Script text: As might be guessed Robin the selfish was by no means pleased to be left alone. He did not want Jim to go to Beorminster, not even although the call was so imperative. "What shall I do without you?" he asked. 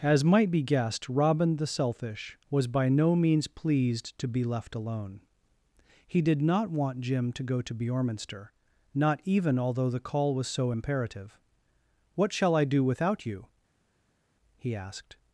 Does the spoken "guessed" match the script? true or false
true